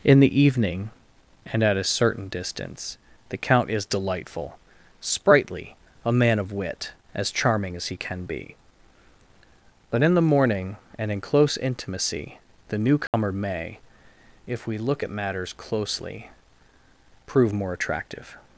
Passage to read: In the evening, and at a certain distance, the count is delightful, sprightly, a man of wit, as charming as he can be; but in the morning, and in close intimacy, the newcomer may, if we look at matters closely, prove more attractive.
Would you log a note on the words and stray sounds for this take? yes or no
yes